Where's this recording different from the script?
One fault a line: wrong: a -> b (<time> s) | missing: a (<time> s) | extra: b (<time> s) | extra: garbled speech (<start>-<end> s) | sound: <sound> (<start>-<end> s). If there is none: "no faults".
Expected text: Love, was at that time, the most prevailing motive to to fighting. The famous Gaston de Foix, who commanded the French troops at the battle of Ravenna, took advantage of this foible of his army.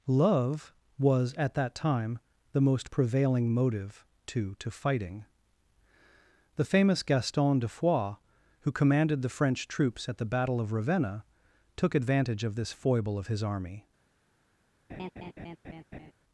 sound: laugh (14.9-16.1 s)